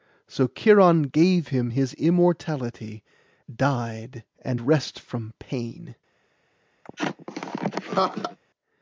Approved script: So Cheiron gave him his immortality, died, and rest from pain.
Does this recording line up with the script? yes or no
yes